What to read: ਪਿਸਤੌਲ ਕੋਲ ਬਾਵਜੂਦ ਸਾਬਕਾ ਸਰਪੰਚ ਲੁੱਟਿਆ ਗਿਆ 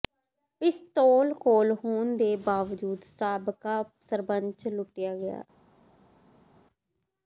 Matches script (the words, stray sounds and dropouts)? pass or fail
fail